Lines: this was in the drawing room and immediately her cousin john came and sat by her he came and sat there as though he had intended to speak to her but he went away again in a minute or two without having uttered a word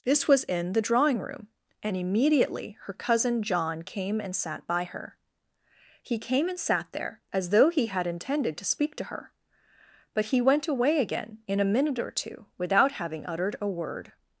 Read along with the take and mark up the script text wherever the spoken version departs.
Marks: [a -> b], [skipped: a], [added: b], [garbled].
this was in the drawing room and immediately her cousin john came and sat by her he came and sat there as though he had intended to speak to her but he went away again in a minute or two without having uttered a word